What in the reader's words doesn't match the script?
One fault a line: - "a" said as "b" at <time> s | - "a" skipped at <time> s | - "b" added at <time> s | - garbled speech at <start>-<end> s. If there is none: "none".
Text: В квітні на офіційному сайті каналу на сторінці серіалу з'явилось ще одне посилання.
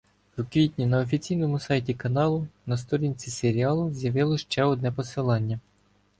none